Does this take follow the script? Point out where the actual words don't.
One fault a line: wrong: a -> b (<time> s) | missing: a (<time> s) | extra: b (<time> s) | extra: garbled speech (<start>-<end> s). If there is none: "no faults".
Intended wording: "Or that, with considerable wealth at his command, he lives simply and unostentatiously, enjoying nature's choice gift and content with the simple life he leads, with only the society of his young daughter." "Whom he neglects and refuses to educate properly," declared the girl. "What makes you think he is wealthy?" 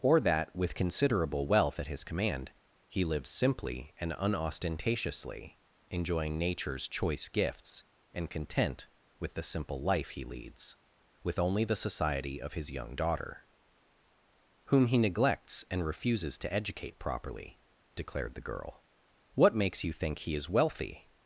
wrong: gift -> gifts (7.3 s)